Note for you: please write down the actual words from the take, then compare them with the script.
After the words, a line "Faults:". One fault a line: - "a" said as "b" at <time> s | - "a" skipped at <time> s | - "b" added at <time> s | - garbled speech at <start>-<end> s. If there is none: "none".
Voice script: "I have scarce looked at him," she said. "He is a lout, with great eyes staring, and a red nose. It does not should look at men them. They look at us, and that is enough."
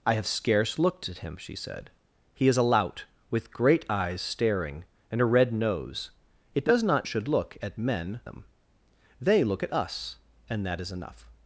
"I have scarce looked at him," she said. "He is a lout, with great eyes staring, and a red nose. It does not should look at men them. They look at us, and that is enough."
Faults:
none